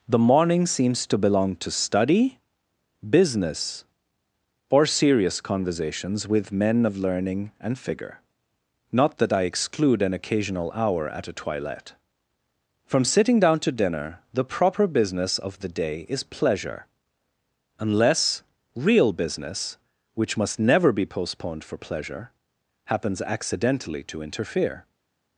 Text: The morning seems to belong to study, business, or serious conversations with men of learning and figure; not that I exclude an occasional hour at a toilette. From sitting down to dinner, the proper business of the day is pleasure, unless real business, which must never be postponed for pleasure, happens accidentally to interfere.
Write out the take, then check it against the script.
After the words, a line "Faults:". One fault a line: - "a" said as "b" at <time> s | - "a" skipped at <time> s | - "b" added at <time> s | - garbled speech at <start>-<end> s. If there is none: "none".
The morning seems to belong to study, business, or serious conversations with men of learning and figure; not that I exclude an occasional hour at a toilette. From sitting down to dinner, the proper business of the day is pleasure, unless real business, which must never be postponed for pleasure, happens accidentally to interfere.
Faults:
none